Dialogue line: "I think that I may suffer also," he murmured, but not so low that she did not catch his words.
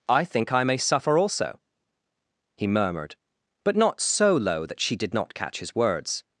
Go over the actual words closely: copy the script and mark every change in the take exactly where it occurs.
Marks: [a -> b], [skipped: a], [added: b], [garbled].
"I think [skipped: that] I may suffer also," he murmured, but not so low that she did not catch his words.